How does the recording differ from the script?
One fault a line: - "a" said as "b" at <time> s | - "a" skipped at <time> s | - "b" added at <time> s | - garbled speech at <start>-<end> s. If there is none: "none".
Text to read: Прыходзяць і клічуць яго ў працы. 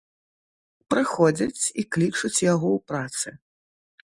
none